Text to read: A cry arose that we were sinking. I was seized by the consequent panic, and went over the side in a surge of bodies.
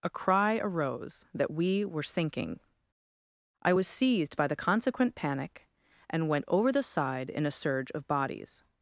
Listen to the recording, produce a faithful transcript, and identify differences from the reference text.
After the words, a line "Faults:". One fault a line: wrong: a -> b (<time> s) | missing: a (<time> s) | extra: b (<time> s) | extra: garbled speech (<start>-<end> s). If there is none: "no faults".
A cry arose that we were sinking. I was seized by the consequent panic, and went over the side in a surge of bodies.
Faults:
no faults